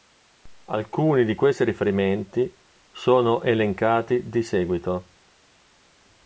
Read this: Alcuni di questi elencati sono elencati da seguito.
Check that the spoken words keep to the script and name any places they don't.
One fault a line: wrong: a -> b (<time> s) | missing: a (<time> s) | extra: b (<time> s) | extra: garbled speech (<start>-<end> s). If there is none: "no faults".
wrong: elencati -> riferimenti (1.6 s)
wrong: da -> di (4.3 s)